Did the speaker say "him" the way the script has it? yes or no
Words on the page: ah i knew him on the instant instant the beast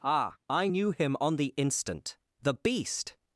yes